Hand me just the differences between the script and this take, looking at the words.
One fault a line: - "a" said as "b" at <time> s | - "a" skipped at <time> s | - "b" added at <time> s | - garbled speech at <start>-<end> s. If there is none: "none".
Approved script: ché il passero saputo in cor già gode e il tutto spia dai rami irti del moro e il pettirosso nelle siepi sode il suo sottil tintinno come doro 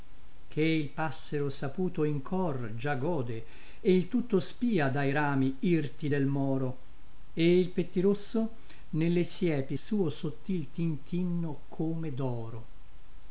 - "sode il" skipped at 9.8 s